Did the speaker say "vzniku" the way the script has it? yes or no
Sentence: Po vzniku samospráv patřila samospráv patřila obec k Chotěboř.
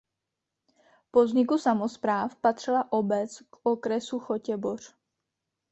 yes